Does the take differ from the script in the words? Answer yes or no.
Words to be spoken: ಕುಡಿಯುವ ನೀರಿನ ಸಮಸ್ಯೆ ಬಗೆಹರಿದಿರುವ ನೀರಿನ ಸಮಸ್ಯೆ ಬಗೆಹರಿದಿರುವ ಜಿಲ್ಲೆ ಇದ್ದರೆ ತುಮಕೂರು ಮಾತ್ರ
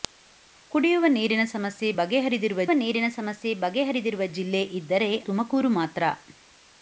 no